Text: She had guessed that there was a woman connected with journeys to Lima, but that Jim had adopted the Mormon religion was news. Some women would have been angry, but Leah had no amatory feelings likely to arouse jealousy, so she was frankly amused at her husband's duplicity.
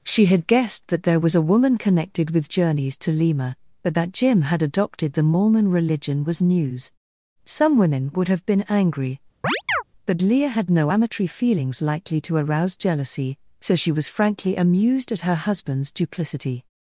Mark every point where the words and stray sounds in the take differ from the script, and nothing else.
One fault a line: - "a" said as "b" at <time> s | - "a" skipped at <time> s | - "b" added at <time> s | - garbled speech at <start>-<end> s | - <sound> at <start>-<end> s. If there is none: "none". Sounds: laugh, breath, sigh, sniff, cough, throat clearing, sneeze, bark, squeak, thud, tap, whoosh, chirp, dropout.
- chirp at 9.4-9.8 s